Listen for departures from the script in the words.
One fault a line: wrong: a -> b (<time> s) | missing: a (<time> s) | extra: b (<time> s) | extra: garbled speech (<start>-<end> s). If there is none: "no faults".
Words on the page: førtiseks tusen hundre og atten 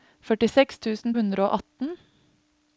no faults